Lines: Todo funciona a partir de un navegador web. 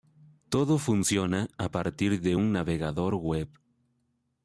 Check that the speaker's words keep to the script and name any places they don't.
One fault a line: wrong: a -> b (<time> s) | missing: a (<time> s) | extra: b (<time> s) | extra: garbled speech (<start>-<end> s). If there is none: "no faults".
no faults